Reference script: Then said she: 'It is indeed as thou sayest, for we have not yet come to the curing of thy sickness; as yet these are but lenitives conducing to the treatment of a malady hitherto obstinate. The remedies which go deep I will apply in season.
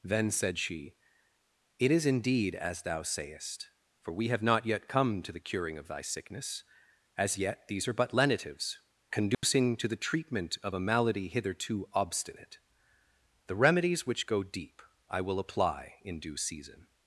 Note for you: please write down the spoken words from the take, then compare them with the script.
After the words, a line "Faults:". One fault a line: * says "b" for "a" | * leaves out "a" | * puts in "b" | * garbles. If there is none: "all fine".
Then said she: 'It is indeed as thou sayest, for we have not yet come to the curing of thy sickness; as yet these are but lenitives conducing to the treatment of a malady hitherto obstinate. The remedies which go deep I will apply in due season.
Faults:
* puts in "due"